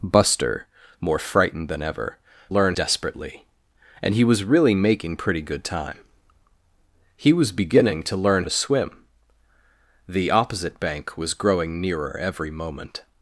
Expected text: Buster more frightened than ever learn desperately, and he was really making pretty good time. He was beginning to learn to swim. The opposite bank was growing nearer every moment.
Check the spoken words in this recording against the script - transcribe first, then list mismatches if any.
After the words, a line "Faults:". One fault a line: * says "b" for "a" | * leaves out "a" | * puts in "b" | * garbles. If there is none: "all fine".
Buster more frightened than ever learn desperately, and he was really making pretty good time. He was beginning to learn to swim. The opposite bank was growing nearer every moment.
Faults:
all fine